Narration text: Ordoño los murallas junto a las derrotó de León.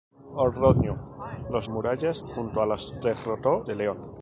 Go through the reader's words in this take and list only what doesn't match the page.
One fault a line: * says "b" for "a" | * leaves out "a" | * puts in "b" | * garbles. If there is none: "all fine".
all fine